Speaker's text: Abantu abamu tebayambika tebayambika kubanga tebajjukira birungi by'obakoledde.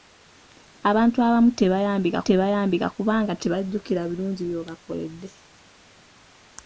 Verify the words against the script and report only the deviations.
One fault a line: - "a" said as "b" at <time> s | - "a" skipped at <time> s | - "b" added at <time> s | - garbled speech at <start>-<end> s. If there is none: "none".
none